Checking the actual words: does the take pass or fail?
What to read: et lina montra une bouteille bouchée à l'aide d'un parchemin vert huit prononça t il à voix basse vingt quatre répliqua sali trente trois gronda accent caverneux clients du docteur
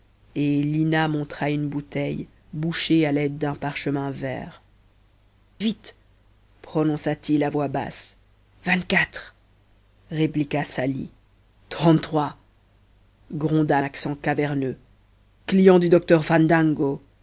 pass